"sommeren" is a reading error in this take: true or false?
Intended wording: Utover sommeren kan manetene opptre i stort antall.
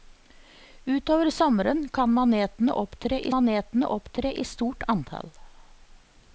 false